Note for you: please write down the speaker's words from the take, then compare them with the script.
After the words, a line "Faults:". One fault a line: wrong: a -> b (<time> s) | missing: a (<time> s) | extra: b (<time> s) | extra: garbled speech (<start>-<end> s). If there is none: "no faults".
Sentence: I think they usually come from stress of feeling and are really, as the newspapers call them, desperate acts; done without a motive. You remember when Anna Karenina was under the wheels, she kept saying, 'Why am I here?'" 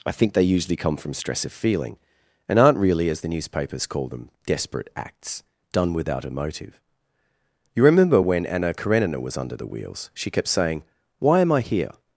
I think they usually come from stress of feeling and aren't really, as the newspapers call them, desperate acts; done without a motive. You remember when Anna Karenina was under the wheels, she kept saying, 'Why am I here?'"
Faults:
wrong: are -> aren't (2.6 s)